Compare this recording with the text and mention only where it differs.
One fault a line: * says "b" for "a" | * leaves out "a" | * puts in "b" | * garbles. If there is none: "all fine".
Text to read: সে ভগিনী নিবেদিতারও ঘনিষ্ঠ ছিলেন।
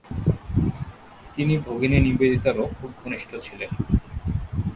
* says "তিনি" for "সে"
* puts in "খুব"